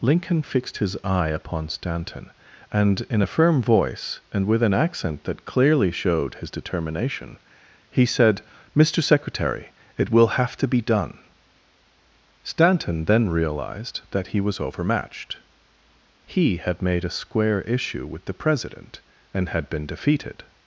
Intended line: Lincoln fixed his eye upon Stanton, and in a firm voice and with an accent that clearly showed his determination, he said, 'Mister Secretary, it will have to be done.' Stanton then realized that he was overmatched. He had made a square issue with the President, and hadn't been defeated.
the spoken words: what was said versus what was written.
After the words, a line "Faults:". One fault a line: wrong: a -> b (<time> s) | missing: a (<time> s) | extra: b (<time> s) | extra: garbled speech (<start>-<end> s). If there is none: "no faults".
Lincoln fixed his eye upon Stanton, and in a firm voice and with an accent that clearly showed his determination, he said, 'Mister Secretary, it will have to be done.' Stanton then realized that he was overmatched. He had made a square issue with the President, and had been defeated.
Faults:
wrong: hadn't -> had (19.5 s)